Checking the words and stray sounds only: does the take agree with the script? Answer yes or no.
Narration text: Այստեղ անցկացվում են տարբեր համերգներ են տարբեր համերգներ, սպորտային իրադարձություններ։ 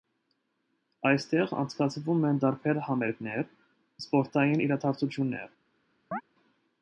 no